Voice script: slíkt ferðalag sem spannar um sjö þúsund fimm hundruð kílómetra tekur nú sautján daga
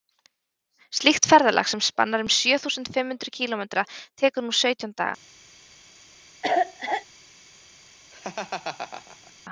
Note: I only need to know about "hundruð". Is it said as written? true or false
true